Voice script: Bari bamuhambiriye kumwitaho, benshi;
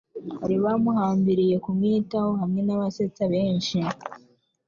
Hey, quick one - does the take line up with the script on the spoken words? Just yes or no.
no